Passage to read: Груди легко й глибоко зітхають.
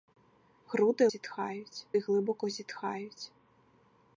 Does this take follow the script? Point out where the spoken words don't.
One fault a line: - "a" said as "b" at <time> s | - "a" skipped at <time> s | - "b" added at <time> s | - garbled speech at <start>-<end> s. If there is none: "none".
- "легко" said as "зітхають" at 1.0 s